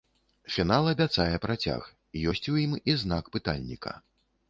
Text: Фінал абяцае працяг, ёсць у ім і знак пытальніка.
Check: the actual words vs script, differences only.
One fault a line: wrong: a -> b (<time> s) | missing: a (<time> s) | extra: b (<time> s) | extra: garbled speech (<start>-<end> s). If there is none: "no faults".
no faults